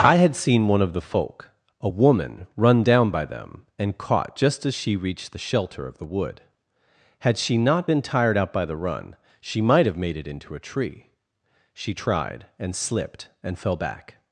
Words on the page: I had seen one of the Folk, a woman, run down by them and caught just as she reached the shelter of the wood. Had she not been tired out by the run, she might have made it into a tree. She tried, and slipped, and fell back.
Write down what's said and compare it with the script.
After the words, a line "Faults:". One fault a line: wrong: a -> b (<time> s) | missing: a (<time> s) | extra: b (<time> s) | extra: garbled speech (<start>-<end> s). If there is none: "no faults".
I had seen one of the Folk, a woman, run down by them and caught just as she reached the shelter of the wood. Had she not been tired out by the run, she might have made it into a tree. She tried, and slipped, and fell back.
Faults:
no faults